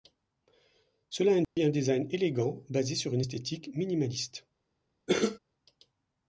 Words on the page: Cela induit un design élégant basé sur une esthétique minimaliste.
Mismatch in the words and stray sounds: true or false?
true